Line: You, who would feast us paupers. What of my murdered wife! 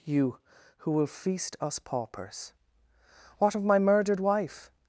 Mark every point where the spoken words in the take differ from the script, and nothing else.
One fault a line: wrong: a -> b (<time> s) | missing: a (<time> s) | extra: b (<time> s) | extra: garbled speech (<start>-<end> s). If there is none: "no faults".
wrong: would -> will (0.9 s)